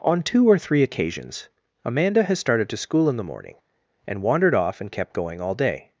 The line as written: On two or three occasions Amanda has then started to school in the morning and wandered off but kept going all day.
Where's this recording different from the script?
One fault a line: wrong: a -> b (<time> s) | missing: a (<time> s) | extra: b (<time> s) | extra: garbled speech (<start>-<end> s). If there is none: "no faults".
missing: then (2.4 s)
wrong: but -> and (4.8 s)